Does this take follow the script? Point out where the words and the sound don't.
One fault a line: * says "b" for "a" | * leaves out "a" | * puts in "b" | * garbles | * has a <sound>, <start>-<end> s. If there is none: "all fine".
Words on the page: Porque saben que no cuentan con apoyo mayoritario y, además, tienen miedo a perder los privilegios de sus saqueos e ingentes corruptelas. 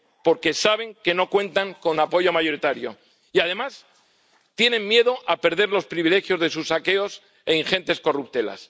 all fine